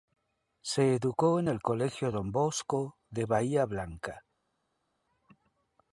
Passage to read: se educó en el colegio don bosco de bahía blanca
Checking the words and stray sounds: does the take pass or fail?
pass